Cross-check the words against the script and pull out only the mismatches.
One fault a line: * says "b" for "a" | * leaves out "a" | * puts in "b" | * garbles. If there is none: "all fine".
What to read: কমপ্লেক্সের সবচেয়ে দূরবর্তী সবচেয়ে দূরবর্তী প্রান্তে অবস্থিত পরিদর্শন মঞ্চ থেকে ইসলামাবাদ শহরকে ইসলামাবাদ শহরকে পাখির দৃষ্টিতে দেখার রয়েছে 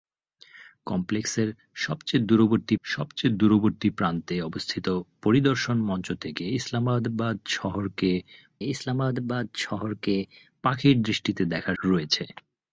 all fine